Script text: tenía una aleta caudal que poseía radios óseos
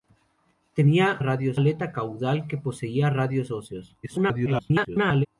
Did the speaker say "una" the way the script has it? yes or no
no